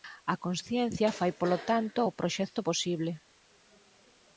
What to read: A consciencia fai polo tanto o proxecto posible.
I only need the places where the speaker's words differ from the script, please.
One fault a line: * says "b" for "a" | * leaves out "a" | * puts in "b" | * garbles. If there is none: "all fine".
all fine